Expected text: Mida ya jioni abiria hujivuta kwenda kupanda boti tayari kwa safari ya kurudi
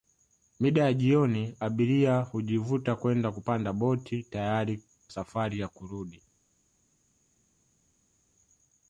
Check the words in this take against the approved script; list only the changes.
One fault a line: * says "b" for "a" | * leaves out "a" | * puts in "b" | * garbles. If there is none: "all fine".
* leaves out "kwa"